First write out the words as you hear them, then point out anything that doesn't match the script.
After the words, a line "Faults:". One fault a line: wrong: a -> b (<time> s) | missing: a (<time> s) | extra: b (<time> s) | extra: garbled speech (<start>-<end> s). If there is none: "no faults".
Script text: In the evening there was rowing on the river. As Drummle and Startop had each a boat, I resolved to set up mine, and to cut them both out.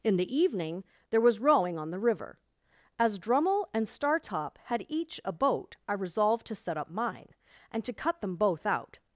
In the evening there was rowing on the river. As Drummle and Startop had each a boat, I resolved to set up mine, and to cut them both out.
Faults:
no faults